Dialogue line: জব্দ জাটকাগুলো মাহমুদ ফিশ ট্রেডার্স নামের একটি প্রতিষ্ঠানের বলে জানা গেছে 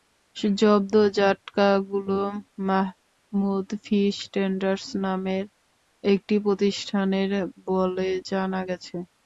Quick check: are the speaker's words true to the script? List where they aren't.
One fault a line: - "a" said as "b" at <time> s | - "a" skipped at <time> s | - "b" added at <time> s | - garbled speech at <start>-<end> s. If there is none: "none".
none